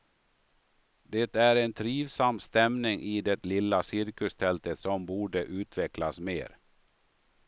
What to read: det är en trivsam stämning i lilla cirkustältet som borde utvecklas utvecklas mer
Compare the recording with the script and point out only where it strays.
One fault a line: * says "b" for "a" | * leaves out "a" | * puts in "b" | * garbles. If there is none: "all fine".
* puts in "det"
* leaves out "utvecklas"